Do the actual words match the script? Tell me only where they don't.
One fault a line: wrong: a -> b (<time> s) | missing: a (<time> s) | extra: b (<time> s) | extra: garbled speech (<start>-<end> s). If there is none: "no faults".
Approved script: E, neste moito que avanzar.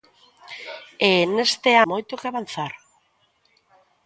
no faults